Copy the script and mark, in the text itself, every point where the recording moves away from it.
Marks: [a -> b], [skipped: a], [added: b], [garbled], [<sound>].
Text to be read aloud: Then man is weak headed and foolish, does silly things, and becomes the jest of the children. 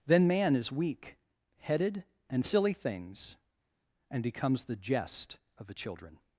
Then man is weak headed and [skipped: foolish, does] silly things, and becomes the jest of the children.